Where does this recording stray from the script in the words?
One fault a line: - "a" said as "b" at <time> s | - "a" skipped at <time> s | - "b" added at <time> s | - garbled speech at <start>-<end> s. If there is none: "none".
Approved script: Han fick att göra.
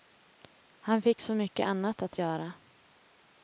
- "så mycket annat" added at 1.2 s